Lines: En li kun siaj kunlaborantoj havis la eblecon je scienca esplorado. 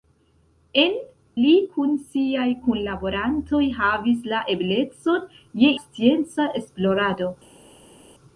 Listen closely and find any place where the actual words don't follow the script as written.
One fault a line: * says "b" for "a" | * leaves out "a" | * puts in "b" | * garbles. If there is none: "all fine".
all fine